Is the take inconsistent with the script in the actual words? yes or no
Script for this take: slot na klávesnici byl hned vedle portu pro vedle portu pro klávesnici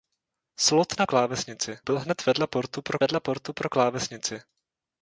no